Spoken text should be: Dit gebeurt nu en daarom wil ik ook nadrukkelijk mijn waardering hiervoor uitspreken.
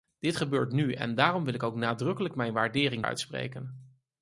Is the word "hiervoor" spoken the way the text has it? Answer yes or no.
no